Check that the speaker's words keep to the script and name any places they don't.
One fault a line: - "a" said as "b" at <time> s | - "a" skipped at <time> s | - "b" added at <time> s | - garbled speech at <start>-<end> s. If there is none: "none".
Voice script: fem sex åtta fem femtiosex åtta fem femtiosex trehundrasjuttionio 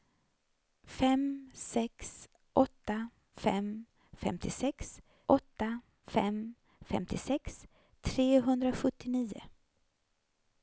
none